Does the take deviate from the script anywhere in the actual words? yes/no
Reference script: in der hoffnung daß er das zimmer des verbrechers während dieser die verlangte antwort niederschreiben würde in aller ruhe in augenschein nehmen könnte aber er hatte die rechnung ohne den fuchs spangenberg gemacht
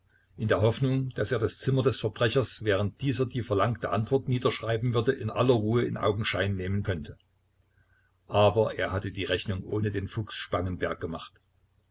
no